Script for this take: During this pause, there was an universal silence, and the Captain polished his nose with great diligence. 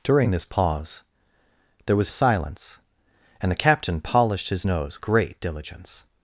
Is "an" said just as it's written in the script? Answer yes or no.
no